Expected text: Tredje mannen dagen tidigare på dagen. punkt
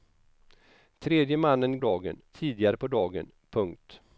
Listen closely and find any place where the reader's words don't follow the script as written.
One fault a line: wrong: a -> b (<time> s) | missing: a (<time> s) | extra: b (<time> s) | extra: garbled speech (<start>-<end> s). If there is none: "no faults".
no faults